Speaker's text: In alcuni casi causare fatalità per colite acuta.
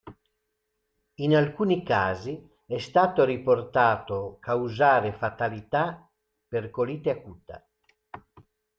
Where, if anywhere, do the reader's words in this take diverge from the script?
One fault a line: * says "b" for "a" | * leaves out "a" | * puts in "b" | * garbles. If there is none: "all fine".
* puts in "è stato riportato"